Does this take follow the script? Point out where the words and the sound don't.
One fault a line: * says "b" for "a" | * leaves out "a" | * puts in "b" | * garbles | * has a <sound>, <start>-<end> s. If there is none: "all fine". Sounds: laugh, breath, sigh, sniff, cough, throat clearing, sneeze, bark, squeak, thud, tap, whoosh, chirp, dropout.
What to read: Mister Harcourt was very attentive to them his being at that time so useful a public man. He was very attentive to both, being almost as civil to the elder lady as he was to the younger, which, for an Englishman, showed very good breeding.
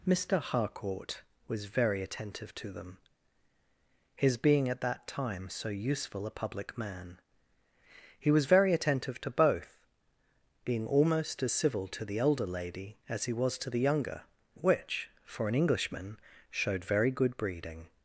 all fine